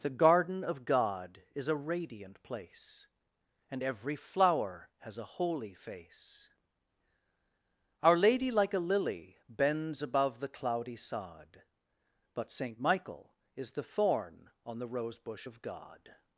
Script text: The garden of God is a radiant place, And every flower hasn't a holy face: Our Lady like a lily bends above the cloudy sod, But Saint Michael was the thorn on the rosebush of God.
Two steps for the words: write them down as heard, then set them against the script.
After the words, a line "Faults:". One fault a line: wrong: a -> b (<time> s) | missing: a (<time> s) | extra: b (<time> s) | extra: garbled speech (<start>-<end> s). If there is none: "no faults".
The garden of God is a radiant place, And every flower has a holy face: Our Lady like a lily bends above the cloudy sod, But Saint Michael is the thorn on the rosebush of God.
Faults:
wrong: hasn't -> has (5.0 s)
wrong: was -> is (13.5 s)